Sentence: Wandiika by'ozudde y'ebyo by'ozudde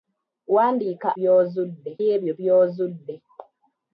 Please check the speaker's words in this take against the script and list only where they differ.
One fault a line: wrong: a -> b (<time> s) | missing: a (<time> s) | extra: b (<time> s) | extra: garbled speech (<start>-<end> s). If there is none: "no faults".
no faults